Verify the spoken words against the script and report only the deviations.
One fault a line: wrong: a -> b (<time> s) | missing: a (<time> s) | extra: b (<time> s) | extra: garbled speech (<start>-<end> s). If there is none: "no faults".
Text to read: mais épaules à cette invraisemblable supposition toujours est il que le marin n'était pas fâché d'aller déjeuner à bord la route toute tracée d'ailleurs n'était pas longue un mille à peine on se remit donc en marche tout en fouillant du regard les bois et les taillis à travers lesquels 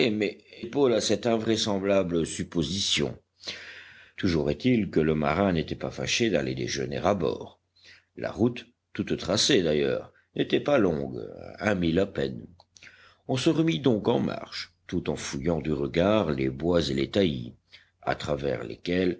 no faults